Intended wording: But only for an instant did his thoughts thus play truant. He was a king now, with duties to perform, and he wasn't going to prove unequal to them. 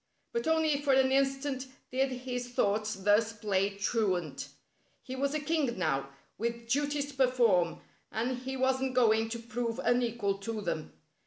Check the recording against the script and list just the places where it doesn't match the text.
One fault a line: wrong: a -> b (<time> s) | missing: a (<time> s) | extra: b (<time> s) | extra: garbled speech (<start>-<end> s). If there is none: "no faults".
no faults